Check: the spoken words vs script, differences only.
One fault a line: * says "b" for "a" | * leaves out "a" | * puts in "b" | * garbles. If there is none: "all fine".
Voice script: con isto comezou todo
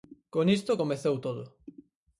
all fine